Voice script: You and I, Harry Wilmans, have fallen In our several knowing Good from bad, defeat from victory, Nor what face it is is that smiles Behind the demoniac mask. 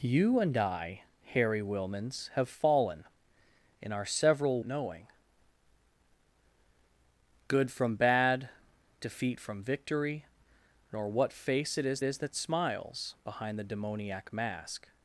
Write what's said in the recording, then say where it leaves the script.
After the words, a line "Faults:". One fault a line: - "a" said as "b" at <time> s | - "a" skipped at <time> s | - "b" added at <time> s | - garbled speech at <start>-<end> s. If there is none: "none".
You and I, Harry Wilmans, have fallen In our several knowing Good from bad, defeat from victory, Nor what face it is is that smiles Behind the demoniac mask.
Faults:
none